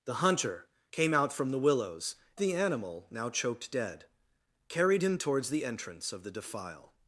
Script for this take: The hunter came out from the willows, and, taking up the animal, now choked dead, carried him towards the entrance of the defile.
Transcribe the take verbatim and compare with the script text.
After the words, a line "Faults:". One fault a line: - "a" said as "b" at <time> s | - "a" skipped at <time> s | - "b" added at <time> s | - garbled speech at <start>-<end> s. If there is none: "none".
The hunter came out from the willows, the animal, now choked dead, carried him towards the entrance of the defile.
Faults:
- "and taking up" skipped at 2.1 s